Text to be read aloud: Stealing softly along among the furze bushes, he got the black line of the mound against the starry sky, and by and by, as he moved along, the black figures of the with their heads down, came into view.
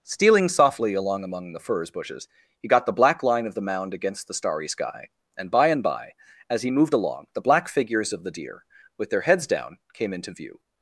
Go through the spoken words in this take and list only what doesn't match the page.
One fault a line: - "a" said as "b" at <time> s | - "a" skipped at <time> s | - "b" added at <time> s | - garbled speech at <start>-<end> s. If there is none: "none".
- "deer" added at 8.3 s